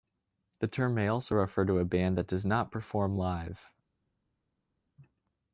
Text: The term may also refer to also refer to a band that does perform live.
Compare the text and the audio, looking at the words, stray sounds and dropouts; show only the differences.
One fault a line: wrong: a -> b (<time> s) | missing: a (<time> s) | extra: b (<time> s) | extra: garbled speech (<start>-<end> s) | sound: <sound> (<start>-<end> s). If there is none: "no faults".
missing: also refer to (1.8 s)
extra: not (2.4 s)